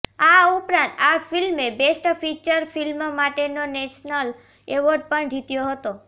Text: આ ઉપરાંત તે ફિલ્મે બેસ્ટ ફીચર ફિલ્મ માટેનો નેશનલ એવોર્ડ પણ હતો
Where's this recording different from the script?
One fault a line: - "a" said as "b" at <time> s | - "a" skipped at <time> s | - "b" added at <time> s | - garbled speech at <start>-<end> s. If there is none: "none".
- "તે" said as "આ" at 1.0 s
- "જીત્યો" added at 5.3 s